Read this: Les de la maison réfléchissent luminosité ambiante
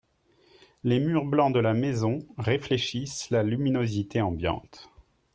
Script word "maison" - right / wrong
right